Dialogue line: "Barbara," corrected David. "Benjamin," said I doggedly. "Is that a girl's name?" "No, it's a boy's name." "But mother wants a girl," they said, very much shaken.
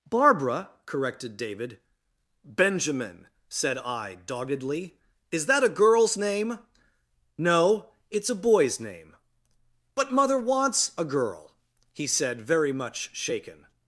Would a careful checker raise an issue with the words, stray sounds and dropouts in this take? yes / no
yes